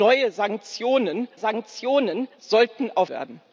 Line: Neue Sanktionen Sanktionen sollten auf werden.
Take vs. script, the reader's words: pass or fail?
pass